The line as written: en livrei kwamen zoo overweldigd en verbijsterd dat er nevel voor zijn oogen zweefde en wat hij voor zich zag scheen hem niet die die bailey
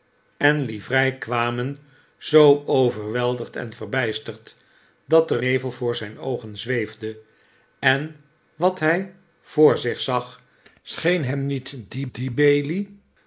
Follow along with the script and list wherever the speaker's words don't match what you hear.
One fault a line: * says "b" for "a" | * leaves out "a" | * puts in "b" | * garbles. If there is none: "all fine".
all fine